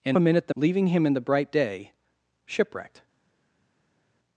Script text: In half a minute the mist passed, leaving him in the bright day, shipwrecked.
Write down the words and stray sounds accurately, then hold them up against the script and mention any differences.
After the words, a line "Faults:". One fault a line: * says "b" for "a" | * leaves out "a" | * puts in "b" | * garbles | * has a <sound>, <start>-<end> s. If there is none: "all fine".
In a minute the leaving him in the bright day, shipwrecked.
Faults:
* leaves out "half"
* leaves out "mist passed"